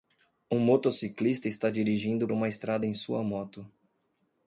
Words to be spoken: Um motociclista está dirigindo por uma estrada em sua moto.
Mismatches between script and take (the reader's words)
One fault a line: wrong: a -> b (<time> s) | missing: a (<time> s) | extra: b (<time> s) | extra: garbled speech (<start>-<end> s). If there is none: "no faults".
missing: por (2.3 s)